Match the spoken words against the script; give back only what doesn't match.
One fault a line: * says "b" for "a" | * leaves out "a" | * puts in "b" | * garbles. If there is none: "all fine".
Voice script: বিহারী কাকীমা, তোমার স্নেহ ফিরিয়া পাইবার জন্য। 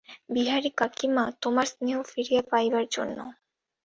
all fine